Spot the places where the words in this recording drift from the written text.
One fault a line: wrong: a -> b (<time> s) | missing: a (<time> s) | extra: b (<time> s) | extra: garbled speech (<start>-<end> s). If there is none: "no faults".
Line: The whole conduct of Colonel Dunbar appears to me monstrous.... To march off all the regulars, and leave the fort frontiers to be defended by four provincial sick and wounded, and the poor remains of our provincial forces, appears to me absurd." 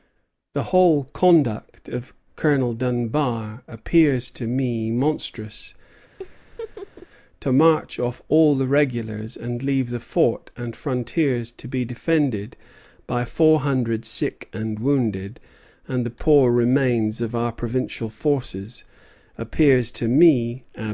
extra: and (10.6 s)
wrong: provincial -> hundred (13.6 s)